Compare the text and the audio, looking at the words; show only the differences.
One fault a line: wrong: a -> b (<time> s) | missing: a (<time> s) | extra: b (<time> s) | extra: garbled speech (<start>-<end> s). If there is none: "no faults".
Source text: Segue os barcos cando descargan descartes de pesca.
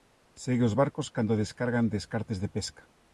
no faults